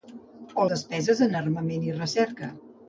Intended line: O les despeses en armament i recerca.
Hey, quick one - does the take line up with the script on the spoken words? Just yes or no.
no